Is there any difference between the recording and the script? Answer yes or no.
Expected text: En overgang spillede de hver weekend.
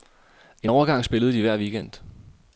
no